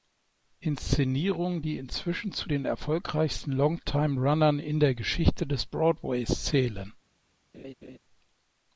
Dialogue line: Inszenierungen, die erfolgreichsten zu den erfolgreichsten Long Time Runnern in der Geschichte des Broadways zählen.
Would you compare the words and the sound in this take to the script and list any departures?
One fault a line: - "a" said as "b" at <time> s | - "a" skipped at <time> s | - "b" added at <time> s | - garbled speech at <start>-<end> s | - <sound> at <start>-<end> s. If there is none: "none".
- "erfolgreichsten" said as "inzwischen" at 1.8 s
- laugh at 7.5-8.0 s